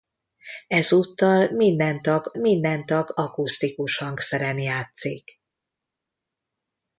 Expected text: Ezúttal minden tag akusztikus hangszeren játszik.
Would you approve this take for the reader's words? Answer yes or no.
no